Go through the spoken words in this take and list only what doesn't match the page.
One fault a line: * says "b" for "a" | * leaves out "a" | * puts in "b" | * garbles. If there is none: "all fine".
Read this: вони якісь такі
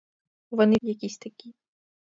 all fine